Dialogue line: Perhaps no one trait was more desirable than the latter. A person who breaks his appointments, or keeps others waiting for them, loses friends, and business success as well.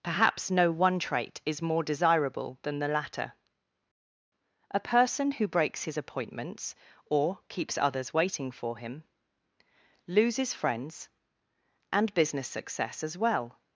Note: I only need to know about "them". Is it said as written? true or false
false